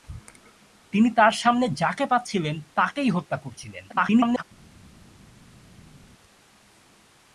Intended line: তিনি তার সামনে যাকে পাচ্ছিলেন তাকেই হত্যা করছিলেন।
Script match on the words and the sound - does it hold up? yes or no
no